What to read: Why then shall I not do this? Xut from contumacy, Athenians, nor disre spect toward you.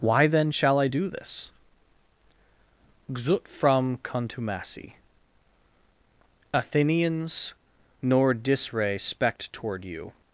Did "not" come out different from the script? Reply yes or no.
yes